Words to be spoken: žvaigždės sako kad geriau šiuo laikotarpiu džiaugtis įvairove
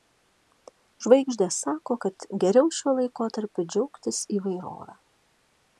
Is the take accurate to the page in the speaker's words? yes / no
yes